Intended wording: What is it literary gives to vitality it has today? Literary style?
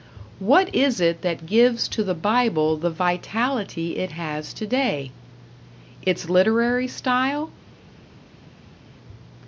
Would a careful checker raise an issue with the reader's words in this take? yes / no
yes